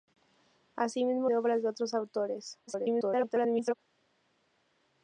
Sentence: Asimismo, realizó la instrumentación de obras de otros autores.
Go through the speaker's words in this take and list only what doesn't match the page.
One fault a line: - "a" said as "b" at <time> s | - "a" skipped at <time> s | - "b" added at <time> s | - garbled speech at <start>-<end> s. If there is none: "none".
- "realizó la instrumentación" skipped at 1.3 s
- garbled speech at 2.7-3.7 s